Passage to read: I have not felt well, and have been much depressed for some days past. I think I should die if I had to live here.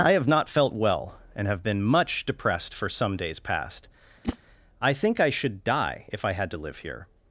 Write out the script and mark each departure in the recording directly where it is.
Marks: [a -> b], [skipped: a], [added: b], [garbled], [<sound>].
I have not felt well, and have been much depressed for some days past. [whoosh] I think I should die if I had to live here.